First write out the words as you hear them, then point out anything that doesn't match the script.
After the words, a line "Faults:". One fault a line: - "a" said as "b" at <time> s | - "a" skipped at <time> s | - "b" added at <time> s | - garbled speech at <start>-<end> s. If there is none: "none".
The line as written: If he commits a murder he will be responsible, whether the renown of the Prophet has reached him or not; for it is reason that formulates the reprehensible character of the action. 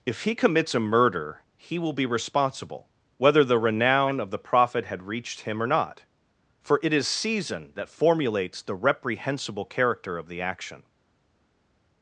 If he commits a murder he will be responsible, whether the renown of the Prophet had reached him or not; for it is season that formulates the reprehensible character of the action.
Faults:
- "has" said as "had" at 4.8 s
- "reason" said as "season" at 7.1 s